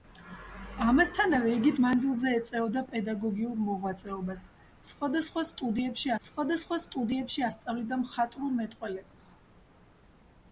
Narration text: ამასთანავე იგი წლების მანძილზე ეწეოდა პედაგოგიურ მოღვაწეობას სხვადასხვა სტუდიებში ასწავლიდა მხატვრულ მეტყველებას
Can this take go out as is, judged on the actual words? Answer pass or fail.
fail